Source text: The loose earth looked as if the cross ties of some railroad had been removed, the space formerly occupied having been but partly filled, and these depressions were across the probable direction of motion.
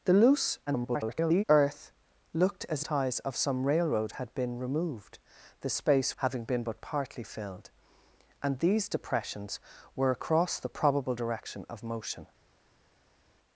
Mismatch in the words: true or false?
true